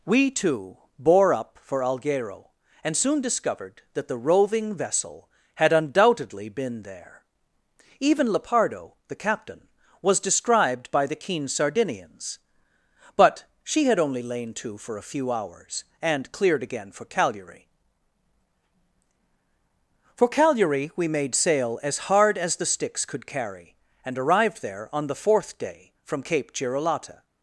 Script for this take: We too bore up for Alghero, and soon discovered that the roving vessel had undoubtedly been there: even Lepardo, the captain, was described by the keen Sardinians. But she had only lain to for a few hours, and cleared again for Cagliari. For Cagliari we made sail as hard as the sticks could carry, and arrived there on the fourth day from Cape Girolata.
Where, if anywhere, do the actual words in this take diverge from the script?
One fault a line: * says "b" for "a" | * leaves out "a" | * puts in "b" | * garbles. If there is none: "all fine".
all fine